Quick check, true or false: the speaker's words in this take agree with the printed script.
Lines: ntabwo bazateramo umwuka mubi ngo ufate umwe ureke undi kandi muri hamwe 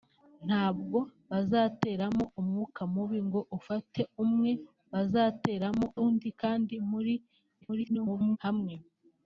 false